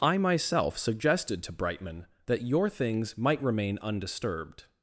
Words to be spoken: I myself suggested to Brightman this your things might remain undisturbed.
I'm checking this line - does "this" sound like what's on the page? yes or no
no